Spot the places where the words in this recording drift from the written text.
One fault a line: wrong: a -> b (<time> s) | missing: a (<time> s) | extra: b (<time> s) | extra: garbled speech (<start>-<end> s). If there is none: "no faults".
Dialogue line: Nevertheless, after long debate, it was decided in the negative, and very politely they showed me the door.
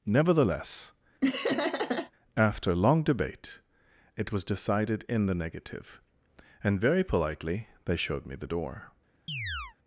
no faults